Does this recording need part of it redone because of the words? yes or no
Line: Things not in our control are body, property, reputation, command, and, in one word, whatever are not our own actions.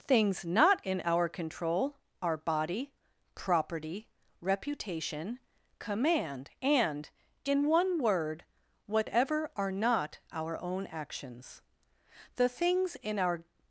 yes